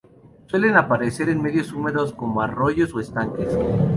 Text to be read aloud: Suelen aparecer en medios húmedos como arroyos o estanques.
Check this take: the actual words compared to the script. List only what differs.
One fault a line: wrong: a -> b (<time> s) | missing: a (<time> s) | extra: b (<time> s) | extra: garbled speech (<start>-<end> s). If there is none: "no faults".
no faults